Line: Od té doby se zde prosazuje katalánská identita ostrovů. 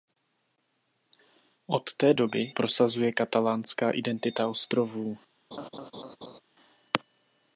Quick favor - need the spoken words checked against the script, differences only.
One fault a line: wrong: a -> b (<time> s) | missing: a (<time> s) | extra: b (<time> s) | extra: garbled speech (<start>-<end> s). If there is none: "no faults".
missing: se zde (2.5 s)